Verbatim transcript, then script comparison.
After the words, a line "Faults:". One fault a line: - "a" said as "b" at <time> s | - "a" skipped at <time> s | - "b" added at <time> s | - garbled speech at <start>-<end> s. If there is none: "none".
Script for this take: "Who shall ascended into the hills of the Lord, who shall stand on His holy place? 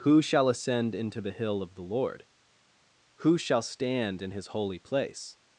"Who shall ascend into the hill of the Lord, who shall stand in His holy place?
Faults:
- "ascended" said as "ascend" at 0.5 s
- "hills" said as "hill" at 1.3 s
- "on" said as "in" at 4.2 s